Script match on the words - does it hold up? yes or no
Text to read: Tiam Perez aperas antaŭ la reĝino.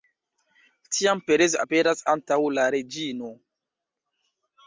yes